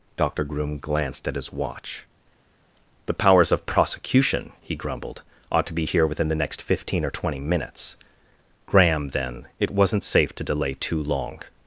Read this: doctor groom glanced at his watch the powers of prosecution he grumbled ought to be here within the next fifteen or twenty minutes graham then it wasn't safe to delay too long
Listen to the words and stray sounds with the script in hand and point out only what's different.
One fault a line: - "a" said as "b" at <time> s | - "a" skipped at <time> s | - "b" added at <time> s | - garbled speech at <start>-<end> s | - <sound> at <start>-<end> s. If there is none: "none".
none